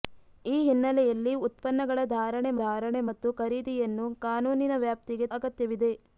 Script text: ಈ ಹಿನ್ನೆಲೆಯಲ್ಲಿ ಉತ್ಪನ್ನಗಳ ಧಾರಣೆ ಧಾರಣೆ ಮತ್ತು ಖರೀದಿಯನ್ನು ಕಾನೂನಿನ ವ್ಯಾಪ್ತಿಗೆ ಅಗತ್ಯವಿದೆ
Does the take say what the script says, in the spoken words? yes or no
yes